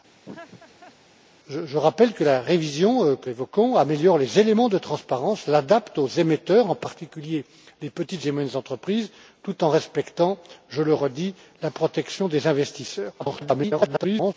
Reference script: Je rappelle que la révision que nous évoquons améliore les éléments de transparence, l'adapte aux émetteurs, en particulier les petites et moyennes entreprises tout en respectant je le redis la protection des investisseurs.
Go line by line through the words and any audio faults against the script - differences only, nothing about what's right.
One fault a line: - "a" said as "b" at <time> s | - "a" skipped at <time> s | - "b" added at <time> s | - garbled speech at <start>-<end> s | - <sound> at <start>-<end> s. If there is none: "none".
- laugh at 0.2-1.0 s
- "nous" skipped at 3.3 s
- garbled speech at 13.2-14.3 s